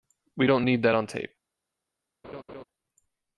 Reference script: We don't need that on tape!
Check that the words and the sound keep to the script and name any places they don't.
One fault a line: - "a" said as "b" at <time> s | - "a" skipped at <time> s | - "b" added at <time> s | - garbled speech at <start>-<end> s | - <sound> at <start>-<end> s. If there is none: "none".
- laugh at 2.2-2.6 s